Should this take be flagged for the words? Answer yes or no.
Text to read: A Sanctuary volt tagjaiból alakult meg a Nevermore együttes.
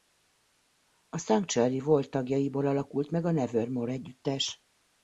no